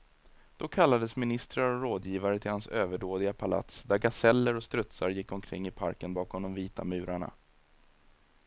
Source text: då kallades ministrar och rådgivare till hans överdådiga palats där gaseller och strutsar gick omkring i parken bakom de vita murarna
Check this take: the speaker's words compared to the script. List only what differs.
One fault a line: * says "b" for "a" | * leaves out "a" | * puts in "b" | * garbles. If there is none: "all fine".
all fine